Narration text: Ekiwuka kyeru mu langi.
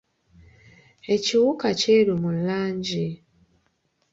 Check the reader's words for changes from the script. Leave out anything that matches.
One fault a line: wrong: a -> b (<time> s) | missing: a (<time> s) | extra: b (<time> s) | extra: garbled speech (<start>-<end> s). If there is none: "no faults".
no faults